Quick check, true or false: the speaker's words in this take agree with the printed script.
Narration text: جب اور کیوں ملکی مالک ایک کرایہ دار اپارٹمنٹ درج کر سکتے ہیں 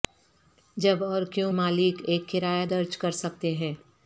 false